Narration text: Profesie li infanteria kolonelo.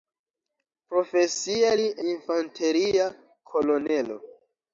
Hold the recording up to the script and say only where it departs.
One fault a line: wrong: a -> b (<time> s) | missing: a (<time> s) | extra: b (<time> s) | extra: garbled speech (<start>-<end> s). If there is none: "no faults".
no faults